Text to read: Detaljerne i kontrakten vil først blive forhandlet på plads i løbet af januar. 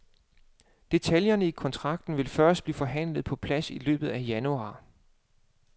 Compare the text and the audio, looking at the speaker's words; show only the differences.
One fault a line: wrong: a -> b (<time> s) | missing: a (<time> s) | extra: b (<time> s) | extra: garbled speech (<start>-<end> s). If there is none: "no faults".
no faults